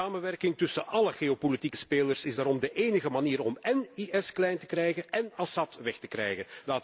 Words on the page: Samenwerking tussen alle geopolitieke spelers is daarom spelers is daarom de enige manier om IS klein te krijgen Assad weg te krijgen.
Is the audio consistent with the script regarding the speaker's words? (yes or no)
no